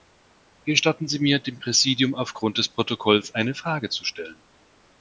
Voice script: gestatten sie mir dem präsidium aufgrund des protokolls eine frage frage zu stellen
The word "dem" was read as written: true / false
true